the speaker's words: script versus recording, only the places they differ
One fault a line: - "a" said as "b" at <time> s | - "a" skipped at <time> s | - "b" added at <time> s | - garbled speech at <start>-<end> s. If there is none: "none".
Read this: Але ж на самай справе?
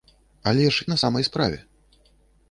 none